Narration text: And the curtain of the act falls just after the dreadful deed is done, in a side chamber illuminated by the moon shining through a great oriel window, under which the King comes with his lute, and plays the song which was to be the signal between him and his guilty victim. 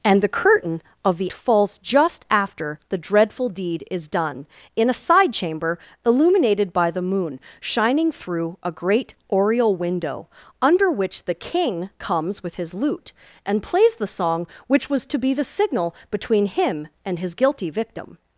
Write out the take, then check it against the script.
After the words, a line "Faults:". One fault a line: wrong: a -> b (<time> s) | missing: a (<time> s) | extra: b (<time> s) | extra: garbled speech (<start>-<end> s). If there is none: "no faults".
And the curtain of the falls just after the dreadful deed is done, in a side chamber illuminated by the moon shining through a great oriel window, under which the King comes with his lute, and plays the song which was to be the signal between him and his guilty victim.
Faults:
missing: act (1.3 s)